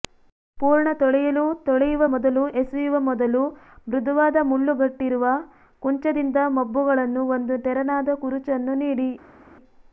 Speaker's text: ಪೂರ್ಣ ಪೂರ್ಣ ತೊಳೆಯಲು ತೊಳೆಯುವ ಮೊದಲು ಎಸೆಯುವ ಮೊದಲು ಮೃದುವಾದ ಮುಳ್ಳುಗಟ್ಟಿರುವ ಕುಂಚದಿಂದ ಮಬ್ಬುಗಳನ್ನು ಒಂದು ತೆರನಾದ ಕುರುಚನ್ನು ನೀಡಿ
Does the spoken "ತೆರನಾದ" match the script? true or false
true